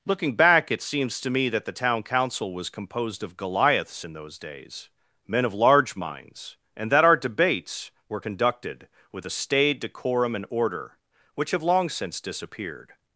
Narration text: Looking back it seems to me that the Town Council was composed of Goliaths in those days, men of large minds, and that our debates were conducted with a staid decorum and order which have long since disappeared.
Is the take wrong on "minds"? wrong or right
right